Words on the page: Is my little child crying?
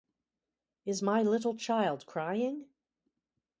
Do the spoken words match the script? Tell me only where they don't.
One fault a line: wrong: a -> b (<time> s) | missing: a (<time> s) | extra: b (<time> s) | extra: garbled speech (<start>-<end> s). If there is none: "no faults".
no faults